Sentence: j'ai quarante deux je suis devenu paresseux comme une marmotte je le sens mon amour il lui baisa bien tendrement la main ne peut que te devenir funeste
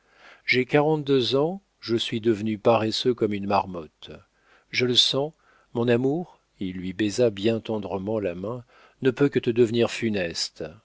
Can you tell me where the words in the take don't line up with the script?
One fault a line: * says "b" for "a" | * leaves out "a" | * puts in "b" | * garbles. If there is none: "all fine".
* puts in "ans"